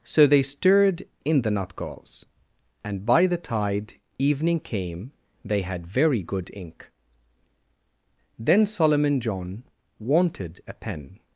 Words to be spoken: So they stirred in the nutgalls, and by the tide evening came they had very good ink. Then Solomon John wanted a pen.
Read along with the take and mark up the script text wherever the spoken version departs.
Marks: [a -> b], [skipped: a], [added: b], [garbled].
So they stirred in the nutgalls, and by the tide evening came they had very good ink. Then Solomon John wanted a pen.